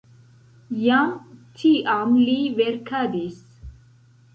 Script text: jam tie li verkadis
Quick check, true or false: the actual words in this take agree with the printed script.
false